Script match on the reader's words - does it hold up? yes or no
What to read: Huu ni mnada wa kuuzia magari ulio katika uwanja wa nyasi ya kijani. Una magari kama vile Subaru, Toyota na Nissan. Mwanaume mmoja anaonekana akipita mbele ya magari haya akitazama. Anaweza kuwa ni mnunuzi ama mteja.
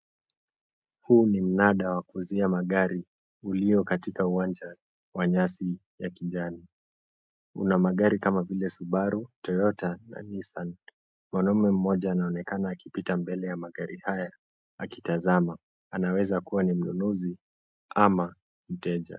yes